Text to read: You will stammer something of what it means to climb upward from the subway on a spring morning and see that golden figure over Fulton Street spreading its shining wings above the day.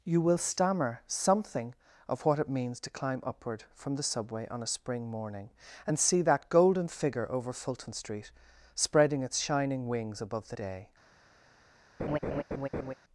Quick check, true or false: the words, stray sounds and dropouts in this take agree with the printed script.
false